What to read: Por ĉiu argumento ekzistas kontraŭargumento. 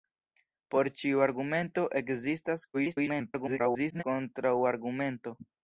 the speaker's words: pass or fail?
fail